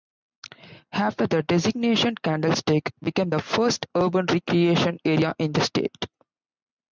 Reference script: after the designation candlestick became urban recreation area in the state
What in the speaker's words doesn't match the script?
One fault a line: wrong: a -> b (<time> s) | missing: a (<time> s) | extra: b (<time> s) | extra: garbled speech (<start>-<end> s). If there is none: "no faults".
extra: the first (3.3 s)